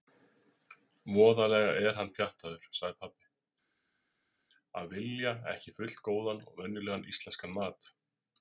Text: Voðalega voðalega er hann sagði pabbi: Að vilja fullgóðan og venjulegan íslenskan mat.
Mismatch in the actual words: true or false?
true